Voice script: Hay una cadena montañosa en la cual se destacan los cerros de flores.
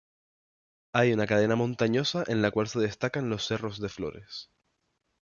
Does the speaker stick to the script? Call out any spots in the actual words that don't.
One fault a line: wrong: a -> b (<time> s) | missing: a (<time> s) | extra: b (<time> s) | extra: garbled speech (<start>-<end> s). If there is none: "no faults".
no faults